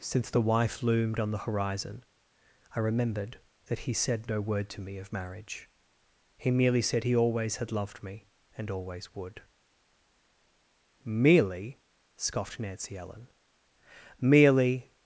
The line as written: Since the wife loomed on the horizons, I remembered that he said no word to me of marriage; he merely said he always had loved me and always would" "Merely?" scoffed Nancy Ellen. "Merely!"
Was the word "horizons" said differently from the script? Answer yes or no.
yes